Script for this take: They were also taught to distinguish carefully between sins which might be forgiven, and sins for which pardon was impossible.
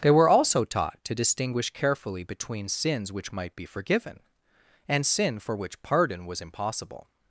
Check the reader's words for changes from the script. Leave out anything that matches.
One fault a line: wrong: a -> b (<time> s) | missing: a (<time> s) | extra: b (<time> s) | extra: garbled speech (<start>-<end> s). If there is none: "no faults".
wrong: sins -> sin (5.0 s)